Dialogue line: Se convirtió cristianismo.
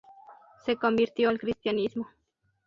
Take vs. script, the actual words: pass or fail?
fail